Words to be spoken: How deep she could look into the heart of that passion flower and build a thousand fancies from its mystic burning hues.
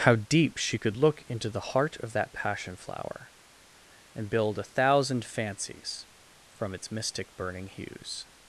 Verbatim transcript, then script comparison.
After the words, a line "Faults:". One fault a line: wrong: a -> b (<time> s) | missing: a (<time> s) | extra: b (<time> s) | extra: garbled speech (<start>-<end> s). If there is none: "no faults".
How deep she could look into the heart of that passion flower and build a thousand fancies from its mystic burning hues.
Faults:
no faults